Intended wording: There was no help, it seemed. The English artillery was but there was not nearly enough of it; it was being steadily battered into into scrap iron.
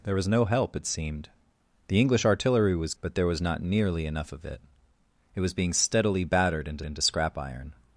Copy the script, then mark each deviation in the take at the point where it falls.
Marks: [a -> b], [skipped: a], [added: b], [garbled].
There was no help, it seemed. The English artillery was but there was not nearly enough of it; it was being steadily battered into into scrap iron.